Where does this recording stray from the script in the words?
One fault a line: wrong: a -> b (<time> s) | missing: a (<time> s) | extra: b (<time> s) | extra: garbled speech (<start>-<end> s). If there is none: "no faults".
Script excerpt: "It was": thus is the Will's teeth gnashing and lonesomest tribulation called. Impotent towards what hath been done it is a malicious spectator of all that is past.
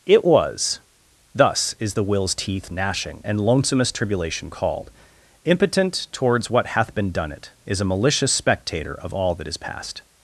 no faults